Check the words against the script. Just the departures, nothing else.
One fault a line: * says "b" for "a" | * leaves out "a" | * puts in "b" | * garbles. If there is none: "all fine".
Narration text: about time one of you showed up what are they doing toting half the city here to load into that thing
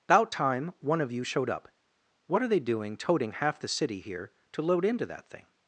all fine